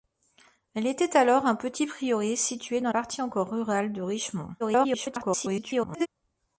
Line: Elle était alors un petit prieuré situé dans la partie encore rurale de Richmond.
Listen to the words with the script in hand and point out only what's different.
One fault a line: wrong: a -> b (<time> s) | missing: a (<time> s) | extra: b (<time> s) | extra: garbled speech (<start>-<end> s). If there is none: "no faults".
missing: la (2.9 s)
extra: garbled speech (4.6-6.1 s)